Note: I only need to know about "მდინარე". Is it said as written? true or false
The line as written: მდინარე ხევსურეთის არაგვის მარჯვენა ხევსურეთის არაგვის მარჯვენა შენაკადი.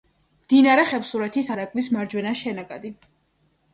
true